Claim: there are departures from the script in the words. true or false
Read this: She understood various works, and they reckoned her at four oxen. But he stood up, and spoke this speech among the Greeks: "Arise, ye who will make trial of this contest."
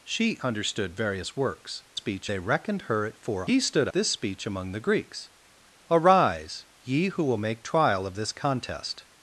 true